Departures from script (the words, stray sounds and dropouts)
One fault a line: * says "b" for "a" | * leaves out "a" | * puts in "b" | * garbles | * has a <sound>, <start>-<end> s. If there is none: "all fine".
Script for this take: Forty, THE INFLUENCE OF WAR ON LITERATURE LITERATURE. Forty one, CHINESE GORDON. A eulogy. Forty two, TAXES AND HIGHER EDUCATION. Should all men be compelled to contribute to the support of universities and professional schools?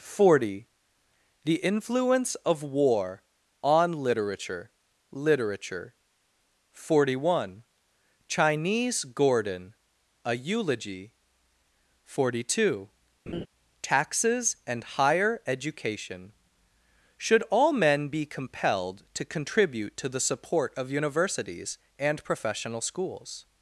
* has a laugh, 13.3-13.5 s